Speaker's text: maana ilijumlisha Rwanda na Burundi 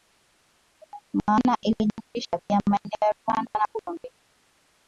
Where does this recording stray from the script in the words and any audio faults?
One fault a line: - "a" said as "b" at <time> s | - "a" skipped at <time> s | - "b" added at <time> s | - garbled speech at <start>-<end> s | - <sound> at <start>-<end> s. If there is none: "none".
- "pia maeneo ya" added at 2.5 s